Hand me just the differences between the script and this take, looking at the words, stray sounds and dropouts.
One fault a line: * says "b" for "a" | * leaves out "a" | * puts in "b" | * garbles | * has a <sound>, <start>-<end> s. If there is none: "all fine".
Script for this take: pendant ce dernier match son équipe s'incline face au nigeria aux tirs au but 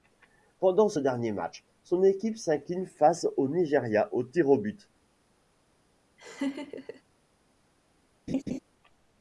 * has a laugh, 6.2-7.0 s
* has a laugh, 8.3-8.6 s